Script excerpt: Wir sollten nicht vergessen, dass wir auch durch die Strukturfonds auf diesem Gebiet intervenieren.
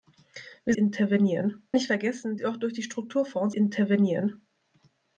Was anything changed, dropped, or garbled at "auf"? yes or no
yes